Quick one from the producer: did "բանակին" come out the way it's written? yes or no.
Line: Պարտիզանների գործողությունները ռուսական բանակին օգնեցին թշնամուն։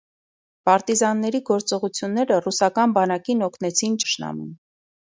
yes